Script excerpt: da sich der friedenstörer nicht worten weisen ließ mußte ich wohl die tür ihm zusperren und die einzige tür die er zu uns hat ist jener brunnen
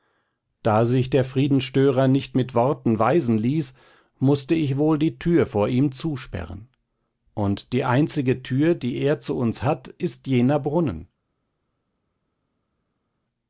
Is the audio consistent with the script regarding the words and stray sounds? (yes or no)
no